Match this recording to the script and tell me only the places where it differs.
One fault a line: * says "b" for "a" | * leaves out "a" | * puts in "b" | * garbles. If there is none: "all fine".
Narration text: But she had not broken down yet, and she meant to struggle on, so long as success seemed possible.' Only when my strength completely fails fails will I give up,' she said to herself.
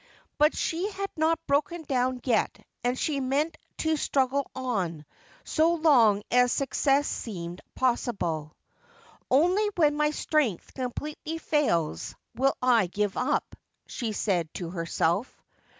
* leaves out "fails"